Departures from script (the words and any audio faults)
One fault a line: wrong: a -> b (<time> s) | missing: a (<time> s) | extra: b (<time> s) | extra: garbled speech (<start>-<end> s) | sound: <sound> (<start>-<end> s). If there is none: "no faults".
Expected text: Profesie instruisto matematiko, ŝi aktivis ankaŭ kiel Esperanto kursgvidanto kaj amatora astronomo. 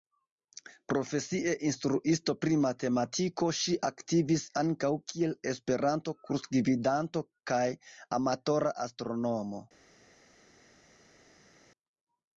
extra: pri (2.4 s)